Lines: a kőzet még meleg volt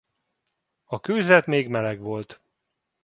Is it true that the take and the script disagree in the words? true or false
false